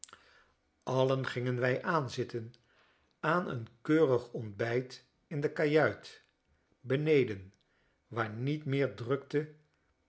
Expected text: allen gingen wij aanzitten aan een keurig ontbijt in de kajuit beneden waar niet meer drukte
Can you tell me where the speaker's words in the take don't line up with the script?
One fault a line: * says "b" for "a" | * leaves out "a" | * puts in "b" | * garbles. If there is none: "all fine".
all fine